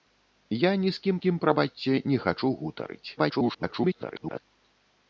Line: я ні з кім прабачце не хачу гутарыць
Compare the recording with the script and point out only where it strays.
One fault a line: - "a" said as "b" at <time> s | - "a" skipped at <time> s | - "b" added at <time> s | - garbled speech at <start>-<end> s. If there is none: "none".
- "кім" added at 1.2 s
- garbled speech at 3.2-4.4 s